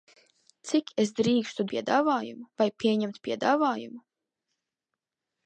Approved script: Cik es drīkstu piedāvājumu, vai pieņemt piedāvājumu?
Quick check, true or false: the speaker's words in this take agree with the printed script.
true